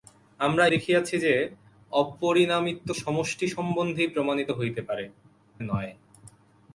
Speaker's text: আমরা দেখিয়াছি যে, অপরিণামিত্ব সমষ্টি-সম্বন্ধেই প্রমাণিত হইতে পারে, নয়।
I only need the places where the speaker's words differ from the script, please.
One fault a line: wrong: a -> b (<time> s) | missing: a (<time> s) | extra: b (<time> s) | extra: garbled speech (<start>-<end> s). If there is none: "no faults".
no faults